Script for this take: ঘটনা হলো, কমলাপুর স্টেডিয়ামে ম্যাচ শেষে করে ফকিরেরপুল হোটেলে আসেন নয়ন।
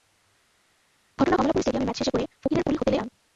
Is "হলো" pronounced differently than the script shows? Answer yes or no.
yes